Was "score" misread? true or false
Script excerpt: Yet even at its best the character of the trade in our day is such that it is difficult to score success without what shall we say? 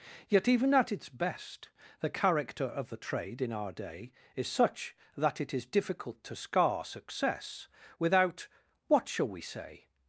true